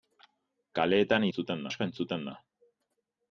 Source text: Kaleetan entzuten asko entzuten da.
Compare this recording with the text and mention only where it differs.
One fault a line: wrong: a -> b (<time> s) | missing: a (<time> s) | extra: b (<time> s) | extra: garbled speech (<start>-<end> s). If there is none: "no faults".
no faults